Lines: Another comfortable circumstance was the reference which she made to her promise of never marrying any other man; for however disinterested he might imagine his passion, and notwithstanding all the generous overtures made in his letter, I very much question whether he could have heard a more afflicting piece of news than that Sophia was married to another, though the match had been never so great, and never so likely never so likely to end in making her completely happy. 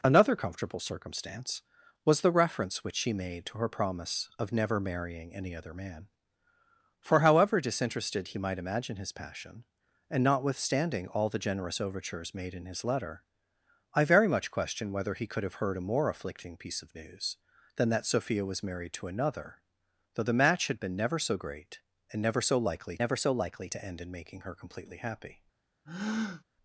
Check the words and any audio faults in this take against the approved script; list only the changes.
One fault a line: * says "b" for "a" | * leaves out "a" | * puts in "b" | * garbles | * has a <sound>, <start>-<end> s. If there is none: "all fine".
* has a breath, 25.9-26.4 s